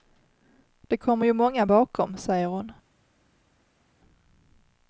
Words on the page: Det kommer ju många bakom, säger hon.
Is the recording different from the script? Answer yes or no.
no